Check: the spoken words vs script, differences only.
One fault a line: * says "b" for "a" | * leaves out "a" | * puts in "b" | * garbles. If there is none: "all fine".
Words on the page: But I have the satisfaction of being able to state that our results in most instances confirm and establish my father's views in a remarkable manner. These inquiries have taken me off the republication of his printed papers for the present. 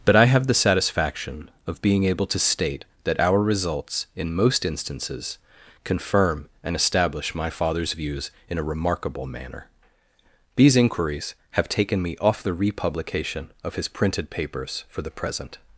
all fine